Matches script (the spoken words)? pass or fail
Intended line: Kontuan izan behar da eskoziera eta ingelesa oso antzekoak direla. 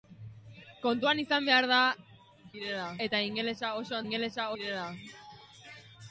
fail